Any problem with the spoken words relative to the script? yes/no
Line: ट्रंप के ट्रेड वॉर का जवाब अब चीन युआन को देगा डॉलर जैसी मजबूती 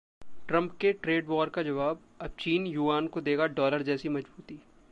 no